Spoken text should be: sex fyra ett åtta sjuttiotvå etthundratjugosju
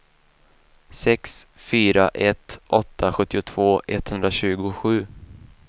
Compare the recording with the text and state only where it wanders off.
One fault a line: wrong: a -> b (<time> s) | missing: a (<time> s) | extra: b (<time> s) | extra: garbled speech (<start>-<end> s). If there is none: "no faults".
no faults